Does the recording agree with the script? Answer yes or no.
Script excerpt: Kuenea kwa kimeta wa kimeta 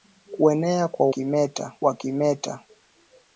yes